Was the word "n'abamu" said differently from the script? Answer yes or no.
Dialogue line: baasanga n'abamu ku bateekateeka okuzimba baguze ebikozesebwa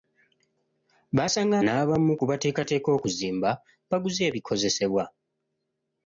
no